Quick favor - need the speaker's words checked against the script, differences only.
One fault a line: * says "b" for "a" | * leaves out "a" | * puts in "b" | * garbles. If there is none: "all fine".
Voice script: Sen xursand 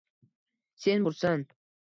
all fine